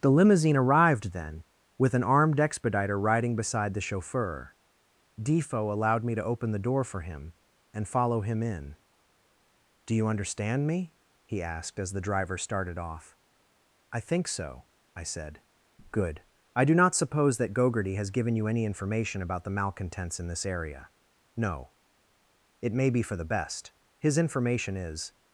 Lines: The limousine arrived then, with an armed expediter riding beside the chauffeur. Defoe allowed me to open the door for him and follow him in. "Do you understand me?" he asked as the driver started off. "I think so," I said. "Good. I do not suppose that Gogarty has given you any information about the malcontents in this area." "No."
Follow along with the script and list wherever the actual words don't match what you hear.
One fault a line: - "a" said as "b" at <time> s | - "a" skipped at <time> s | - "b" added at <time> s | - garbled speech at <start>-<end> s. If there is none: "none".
- "It may be for the best his information is" added at 22.6 s